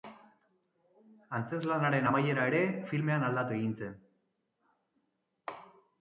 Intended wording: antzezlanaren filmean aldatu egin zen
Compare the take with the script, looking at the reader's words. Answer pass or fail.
fail